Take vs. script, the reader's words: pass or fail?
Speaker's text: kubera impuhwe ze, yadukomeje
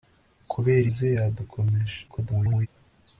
fail